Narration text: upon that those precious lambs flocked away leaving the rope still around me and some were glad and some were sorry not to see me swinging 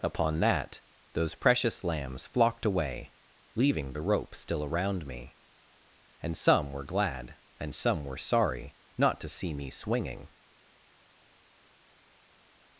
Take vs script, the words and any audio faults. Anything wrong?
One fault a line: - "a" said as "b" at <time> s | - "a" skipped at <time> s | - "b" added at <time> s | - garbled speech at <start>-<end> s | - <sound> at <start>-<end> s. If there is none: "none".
none